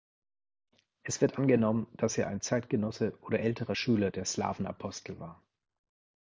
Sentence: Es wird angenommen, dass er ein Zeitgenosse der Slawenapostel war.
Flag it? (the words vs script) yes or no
yes